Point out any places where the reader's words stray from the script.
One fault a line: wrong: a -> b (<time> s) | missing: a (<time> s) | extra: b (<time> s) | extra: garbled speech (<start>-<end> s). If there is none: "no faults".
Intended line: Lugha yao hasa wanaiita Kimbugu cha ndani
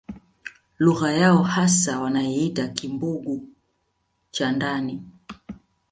no faults